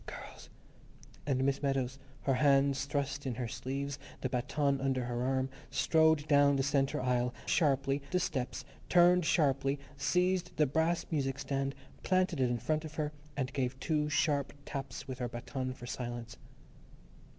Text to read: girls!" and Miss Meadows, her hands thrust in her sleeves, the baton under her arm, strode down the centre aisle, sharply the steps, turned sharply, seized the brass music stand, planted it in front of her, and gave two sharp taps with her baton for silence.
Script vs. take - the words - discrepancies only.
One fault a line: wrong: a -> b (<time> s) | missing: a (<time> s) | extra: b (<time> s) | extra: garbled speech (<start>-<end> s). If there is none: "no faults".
no faults